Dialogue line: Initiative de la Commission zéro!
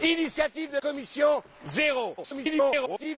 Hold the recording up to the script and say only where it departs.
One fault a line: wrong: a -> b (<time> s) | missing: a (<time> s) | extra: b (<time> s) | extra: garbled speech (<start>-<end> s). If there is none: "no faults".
missing: la (0.8 s)
extra: garbled speech (2.2-3.2 s)